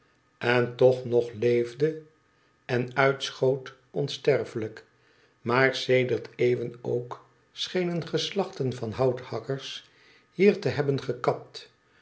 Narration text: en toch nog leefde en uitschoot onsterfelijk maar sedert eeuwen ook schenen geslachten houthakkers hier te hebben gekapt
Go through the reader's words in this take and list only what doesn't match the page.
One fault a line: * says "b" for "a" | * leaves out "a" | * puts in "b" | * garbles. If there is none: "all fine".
* puts in "van"